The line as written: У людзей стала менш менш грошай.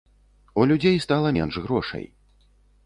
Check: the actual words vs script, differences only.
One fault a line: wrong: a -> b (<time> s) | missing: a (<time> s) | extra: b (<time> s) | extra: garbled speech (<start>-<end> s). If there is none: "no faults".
missing: менш (1.6 s)